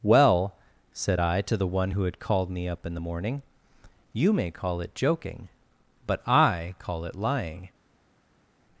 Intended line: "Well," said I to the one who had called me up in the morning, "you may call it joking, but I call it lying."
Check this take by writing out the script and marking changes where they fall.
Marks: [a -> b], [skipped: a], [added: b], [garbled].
"Well," said I to the one who had called me up in the morning, "you may call it joking, but I call it lying."